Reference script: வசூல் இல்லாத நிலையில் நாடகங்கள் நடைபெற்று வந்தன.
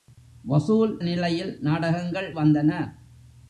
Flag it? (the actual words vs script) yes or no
yes